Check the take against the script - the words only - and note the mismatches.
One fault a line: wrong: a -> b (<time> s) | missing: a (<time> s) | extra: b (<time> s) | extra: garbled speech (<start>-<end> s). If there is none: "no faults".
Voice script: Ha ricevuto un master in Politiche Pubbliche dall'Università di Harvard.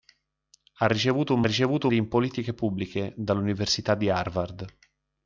wrong: master -> ricevuto (1.4 s)